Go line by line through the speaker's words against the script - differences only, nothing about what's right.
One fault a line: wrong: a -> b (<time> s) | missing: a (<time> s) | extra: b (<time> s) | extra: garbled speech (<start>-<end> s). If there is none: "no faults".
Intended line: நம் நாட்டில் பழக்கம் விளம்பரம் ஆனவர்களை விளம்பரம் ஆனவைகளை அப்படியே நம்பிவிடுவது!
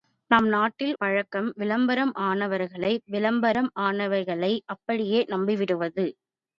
no faults